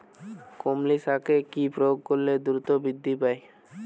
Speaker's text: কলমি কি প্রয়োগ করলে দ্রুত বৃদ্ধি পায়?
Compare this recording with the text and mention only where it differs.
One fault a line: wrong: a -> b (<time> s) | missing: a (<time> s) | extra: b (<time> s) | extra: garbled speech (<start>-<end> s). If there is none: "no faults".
extra: শাকে (1.0 s)